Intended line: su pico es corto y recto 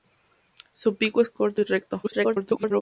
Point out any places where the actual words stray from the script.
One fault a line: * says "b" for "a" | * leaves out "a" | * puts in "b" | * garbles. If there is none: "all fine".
* garbles